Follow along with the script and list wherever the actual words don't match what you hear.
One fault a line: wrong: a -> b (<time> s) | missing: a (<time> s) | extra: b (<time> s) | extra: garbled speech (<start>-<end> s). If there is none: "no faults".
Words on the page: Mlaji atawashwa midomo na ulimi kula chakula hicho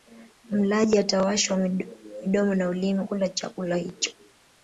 no faults